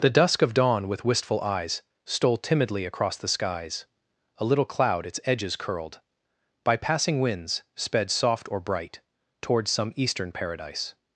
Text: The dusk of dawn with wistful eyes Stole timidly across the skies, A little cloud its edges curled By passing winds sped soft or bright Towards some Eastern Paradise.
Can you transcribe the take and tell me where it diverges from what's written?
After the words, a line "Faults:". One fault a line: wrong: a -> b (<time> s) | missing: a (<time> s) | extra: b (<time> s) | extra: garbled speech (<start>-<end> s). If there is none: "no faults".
The dusk of dawn with wistful eyes Stole timidly across the skies, A little cloud its edges curled By passing winds sped soft or bright Towards some Eastern Paradise.
Faults:
no faults